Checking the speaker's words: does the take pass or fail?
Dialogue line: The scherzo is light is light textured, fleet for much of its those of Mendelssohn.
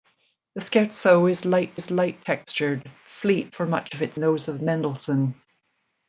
pass